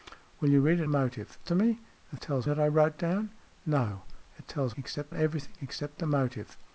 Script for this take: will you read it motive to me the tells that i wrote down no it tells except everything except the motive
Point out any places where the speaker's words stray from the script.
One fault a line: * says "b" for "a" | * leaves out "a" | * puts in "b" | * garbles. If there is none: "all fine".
all fine